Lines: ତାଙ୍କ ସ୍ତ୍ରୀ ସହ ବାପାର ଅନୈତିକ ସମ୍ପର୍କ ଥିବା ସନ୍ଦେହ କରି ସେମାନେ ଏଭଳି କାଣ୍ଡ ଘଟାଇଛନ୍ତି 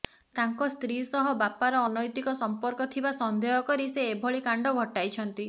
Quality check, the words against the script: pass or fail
fail